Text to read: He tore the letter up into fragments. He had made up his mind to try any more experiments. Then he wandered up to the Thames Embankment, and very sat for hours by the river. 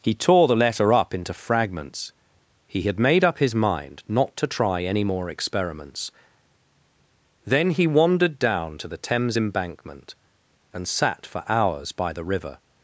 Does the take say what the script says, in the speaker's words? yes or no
no